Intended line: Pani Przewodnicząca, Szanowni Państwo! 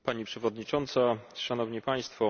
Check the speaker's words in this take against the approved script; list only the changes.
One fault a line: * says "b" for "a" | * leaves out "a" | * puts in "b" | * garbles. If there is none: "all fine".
all fine